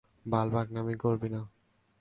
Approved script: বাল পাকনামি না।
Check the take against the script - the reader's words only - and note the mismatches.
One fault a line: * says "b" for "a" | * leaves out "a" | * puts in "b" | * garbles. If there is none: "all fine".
* puts in "করবি"